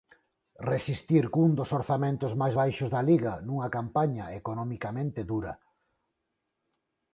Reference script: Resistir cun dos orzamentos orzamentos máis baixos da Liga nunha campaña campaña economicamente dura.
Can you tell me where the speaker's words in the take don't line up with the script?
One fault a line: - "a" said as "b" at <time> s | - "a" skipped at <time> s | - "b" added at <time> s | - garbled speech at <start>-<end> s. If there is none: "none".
- "orzamentos" skipped at 2.3 s
- "campaña" skipped at 4.3 s